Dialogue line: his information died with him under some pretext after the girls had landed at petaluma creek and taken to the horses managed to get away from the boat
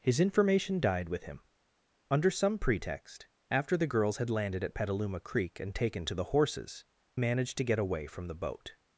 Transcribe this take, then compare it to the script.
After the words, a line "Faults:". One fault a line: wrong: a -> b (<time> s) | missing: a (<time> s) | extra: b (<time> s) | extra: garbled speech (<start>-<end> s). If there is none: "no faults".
his information died with him under some pretext after the girls had landed at petaluma creek and taken to the horses managed to get away from the boat
Faults:
no faults